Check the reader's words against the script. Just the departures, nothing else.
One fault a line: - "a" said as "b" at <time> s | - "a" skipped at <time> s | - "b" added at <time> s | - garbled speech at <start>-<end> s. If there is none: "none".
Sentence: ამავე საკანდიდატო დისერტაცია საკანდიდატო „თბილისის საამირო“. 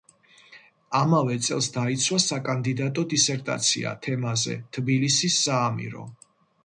- "წელს დაიცვა" added at 1.5 s
- "საკანდიდატო" said as "თემაზე" at 4.1 s